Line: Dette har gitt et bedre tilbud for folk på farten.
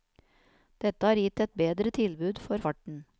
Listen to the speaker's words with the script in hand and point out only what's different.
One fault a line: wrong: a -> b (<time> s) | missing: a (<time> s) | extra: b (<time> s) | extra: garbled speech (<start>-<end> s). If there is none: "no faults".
missing: folk på (2.6 s)